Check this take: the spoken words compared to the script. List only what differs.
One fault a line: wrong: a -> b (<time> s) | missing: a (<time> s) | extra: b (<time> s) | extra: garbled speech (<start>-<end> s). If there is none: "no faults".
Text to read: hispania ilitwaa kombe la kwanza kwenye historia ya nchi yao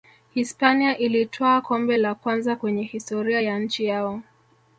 no faults